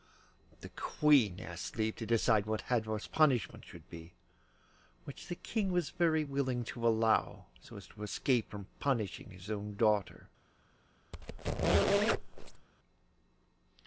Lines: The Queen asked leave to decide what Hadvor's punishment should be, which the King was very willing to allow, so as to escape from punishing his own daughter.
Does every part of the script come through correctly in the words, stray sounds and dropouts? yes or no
no